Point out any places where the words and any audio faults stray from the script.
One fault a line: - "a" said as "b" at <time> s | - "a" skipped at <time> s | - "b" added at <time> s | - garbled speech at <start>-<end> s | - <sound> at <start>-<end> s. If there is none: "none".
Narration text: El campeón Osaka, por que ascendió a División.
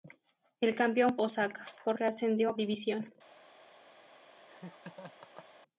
- laugh at 4.4-5.5 s